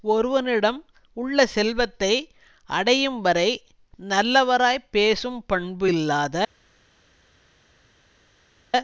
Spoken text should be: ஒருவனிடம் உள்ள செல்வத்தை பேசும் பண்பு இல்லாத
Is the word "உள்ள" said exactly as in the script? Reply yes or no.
yes